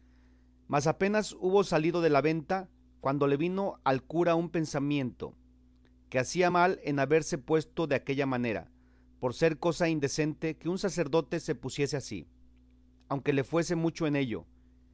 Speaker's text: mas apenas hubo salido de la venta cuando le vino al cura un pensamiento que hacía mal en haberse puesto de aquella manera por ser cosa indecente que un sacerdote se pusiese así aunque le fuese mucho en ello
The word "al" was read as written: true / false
true